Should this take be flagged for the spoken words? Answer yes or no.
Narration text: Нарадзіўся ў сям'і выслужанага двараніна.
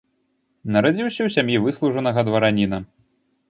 no